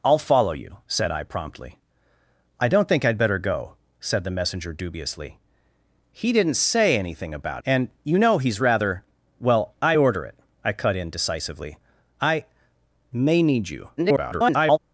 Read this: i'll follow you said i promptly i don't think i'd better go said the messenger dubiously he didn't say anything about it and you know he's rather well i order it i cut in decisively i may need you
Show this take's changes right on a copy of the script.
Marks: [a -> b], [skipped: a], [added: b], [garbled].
i'll follow you said i promptly i don't think i'd better go said the messenger dubiously he didn't say anything about [skipped: it] and you know he's rather well i order it i cut in decisively i may need you [garbled]